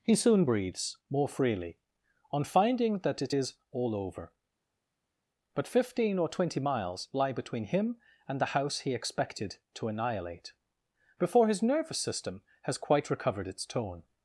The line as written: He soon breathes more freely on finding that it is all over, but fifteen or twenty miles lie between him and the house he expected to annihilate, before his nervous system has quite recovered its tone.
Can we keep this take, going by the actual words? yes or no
yes